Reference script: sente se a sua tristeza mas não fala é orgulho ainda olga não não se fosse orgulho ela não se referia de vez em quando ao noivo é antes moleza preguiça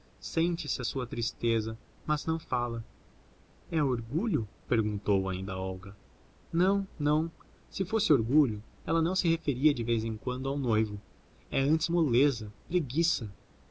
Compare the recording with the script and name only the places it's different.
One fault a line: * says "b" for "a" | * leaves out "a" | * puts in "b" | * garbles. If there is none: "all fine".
* puts in "perguntou"